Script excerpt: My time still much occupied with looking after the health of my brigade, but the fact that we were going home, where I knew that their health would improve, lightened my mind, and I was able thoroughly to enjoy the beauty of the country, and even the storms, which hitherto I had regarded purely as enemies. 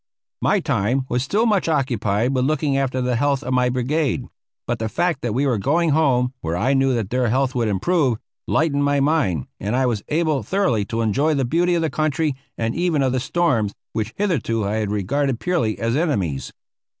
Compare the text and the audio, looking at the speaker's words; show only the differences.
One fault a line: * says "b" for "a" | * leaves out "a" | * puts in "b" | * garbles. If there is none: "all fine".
* puts in "was"
* puts in "of"